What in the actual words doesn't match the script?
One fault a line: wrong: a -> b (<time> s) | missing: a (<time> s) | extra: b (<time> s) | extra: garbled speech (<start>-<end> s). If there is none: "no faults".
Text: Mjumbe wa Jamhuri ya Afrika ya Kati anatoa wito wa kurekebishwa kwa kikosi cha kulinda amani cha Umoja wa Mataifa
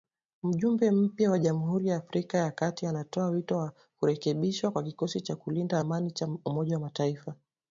extra: mpya (0.9 s)